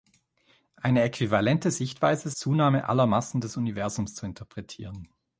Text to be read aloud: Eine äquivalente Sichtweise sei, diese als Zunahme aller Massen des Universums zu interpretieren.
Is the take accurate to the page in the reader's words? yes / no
no